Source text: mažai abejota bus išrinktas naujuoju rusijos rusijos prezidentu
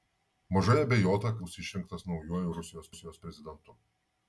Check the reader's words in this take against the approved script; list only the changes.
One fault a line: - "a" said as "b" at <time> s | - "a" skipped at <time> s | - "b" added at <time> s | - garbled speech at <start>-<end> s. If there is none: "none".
none